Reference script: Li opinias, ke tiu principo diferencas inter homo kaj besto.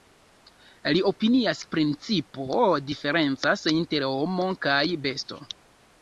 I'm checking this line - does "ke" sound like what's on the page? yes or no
no